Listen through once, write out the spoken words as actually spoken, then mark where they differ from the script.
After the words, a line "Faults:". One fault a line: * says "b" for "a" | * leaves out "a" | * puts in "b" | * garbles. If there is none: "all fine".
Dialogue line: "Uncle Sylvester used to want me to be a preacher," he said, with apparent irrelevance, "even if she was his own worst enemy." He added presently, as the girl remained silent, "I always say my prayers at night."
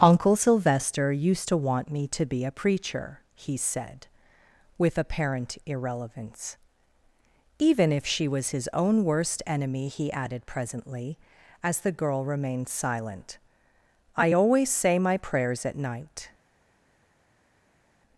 "Uncle Sylvester used to want me to be a preacher," he said, with apparent irrelevance, "even if she was his own worst enemy." He added presently, as the girl remained silent, "I always say my prayers at night."
Faults:
all fine